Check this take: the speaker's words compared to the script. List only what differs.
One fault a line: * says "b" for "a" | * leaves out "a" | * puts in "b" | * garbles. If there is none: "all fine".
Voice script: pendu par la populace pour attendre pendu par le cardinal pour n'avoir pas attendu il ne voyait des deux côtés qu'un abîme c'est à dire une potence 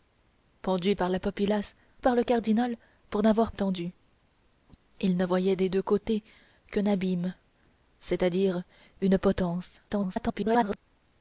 * leaves out "pour attendre pendu"
* leaves out "pas"
* garbles